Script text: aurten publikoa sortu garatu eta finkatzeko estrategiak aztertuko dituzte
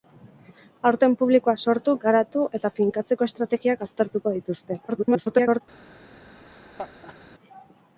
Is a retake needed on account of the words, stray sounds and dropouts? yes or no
yes